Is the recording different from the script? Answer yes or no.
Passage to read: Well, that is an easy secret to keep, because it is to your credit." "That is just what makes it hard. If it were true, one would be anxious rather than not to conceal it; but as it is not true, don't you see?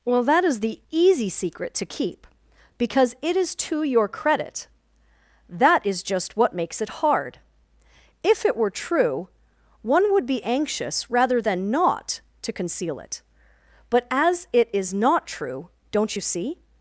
yes